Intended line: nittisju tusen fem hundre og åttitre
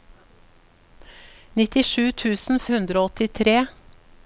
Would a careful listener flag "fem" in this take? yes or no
yes